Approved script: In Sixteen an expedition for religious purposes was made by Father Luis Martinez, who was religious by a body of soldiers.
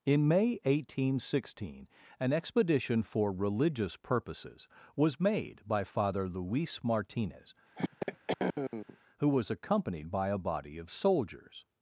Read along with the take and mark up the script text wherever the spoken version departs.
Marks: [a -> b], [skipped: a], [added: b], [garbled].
In [added: May eighteen] Sixteen an expedition for religious purposes was made by Father Luis Martinez, who was [religious -> accompanied] by a body of soldiers.